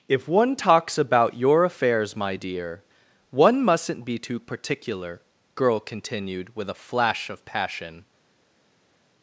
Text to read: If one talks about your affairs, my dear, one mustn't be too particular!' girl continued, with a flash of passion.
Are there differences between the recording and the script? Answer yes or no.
no